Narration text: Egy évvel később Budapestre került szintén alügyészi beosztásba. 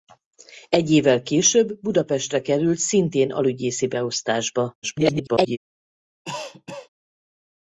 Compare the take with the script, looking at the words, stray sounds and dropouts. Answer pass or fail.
fail